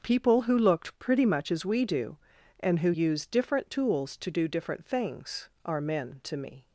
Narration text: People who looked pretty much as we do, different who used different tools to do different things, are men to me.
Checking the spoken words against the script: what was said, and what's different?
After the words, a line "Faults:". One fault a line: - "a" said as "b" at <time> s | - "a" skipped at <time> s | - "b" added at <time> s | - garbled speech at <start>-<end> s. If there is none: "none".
People who looked pretty much as we do, and who used different tools to do different things, are men to me.
Faults:
- "different" said as "and" at 2.6 s